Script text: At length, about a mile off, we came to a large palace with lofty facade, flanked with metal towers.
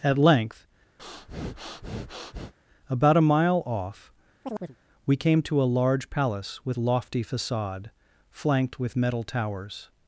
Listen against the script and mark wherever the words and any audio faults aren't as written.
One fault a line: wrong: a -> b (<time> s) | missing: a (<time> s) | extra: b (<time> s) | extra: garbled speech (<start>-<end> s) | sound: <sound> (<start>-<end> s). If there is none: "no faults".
sound: breath (1.0-2.5 s)
sound: chirp (4.4-4.8 s)